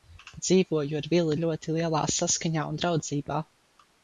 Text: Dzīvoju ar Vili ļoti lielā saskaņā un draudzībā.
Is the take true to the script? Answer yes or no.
yes